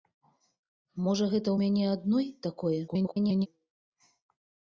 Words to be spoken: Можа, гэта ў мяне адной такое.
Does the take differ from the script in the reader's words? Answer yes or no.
yes